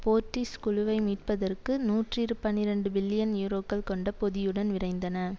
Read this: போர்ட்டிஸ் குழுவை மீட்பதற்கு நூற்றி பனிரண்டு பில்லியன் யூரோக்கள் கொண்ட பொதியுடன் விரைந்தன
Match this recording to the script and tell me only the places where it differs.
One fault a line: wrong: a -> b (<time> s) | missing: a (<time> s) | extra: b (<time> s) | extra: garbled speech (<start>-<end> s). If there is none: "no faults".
no faults